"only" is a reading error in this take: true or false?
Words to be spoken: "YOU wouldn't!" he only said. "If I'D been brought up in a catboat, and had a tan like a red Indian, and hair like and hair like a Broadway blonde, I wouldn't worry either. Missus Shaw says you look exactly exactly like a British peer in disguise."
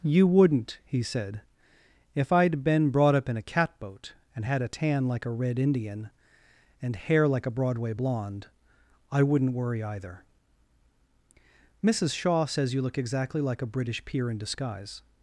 true